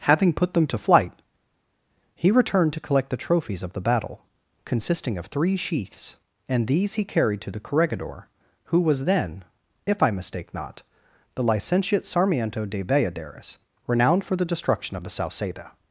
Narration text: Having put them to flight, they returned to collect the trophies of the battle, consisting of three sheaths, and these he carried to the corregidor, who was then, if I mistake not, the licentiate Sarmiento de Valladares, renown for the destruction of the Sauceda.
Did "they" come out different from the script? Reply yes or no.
yes